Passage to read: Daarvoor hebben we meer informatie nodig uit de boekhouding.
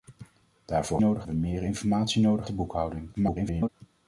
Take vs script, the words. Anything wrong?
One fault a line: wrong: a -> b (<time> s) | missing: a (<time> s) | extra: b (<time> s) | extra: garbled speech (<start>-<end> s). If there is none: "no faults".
wrong: hebben -> nodig (1.0 s)
missing: uit (2.5 s)
extra: garbled speech (3.1-3.7 s)